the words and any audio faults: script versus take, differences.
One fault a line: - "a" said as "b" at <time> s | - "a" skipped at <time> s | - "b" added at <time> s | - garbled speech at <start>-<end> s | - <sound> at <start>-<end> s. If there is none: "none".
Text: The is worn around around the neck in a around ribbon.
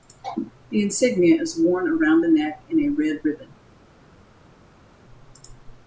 - "insignia" added at 0.8 s
- "around" skipped at 2.2 s
- "around" said as "red" at 2.9 s